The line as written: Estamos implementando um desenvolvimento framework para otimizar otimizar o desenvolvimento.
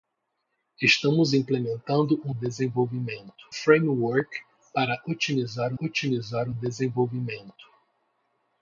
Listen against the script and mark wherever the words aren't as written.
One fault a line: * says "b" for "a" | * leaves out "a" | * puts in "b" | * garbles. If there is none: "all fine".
all fine